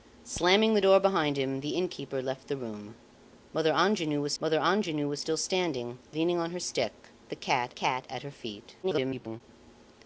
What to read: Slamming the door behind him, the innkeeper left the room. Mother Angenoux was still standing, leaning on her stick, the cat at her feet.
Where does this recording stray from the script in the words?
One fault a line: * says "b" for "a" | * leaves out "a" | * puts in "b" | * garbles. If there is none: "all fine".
* puts in "mother Angenoux was"
* puts in "cat"
* garbles